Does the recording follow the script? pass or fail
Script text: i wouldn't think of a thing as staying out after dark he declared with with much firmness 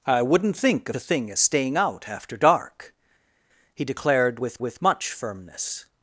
pass